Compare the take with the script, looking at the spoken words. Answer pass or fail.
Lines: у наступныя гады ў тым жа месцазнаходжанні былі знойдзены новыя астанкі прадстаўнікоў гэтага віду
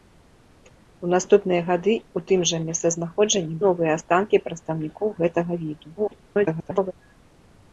fail